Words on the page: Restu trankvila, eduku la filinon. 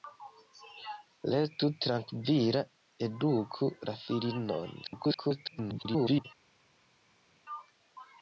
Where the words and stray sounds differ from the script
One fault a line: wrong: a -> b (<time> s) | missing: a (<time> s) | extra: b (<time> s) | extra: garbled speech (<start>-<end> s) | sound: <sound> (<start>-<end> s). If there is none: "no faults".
extra: garbled speech (4.8-6.3 s)